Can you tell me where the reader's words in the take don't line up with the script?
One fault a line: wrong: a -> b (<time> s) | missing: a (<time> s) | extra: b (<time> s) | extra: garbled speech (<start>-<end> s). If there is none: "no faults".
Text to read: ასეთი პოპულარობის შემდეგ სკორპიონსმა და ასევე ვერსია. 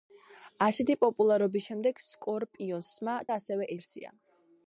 no faults